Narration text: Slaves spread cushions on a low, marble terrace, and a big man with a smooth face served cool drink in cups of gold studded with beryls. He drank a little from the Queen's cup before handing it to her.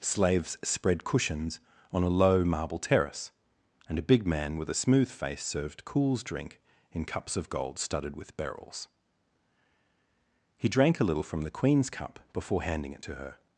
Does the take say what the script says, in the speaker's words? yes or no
no